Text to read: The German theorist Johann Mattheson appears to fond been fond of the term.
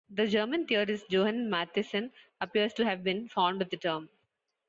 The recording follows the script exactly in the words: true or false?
false